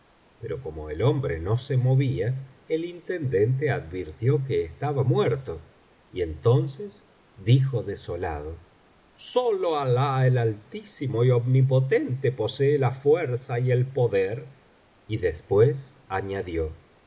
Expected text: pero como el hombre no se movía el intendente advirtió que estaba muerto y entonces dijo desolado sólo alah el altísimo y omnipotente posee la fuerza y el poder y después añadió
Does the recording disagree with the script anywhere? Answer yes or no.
no